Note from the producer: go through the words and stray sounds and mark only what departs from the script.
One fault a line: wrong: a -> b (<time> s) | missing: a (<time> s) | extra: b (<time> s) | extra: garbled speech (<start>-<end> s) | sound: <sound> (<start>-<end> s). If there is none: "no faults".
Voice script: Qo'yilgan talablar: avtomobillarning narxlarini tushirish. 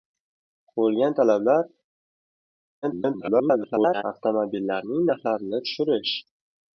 extra: garbled speech (2.8-4.0 s)